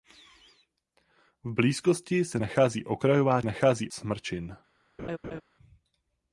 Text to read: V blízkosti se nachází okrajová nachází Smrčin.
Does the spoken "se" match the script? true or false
true